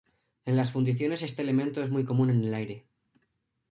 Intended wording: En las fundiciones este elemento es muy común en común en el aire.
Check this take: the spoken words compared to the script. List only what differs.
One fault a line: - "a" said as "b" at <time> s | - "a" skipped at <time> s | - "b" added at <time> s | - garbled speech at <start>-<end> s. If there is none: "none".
- "común en" skipped at 2.4 s